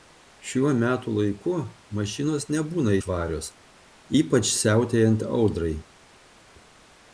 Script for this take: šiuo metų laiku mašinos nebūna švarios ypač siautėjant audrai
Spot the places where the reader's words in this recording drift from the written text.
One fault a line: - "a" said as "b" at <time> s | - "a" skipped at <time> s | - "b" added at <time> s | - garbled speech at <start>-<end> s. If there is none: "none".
none